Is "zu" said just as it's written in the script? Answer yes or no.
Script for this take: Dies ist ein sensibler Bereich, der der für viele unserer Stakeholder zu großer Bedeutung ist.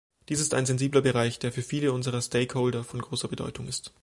no